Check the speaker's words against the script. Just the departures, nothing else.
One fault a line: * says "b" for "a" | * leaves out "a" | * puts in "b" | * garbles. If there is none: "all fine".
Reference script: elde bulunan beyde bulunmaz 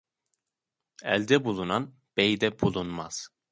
all fine